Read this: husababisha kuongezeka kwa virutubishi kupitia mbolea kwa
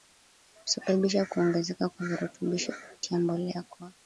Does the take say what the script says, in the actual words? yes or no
yes